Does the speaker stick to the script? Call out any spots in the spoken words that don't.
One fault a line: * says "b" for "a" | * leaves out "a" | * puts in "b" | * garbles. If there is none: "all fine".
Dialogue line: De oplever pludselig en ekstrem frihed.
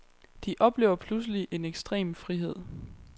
all fine